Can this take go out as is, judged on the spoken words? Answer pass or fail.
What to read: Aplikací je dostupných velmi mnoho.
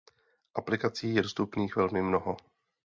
pass